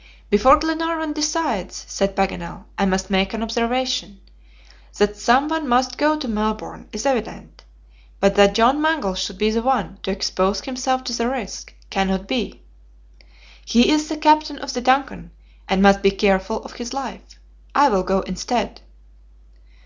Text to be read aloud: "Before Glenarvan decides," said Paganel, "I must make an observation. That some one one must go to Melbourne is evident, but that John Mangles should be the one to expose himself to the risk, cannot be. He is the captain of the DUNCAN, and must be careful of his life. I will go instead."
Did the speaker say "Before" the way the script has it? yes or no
yes